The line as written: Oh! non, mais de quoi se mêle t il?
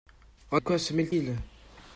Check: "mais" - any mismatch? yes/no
yes